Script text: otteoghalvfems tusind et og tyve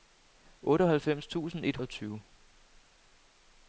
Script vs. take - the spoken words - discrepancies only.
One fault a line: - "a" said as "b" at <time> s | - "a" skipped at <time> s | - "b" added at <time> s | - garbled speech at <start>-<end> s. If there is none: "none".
none